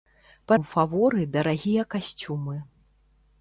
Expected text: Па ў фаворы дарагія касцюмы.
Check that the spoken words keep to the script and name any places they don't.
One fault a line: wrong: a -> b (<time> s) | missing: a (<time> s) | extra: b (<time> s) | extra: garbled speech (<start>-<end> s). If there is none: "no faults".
no faults